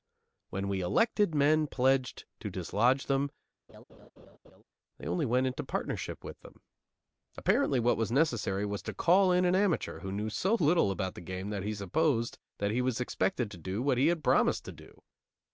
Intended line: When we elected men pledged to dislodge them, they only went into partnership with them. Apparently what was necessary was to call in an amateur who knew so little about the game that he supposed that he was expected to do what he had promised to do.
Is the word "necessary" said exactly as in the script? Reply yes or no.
yes